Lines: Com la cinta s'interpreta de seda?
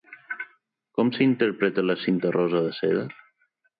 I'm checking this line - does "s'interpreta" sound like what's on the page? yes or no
no